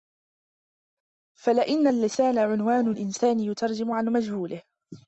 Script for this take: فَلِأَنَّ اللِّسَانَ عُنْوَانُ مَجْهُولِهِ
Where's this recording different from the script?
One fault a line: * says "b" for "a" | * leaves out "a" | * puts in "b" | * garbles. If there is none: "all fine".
* puts in "الْإِنْسَانِ يُتَرْجِمُ عَنْ"